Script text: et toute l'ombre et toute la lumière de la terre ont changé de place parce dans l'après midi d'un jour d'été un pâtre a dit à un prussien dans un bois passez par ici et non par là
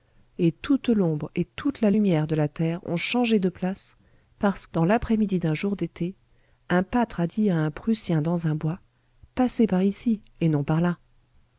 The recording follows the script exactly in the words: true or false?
true